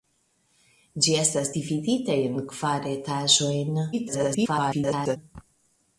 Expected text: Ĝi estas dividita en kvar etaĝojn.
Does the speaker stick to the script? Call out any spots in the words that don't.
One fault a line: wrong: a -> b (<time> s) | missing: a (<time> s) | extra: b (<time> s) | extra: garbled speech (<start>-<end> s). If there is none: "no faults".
extra: garbled speech (3.9-5.2 s)